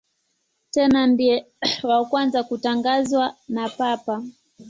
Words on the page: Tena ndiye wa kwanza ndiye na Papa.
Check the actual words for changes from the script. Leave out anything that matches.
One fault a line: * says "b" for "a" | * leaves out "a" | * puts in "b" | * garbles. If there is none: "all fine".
* says "kutangazwa" for "ndiye"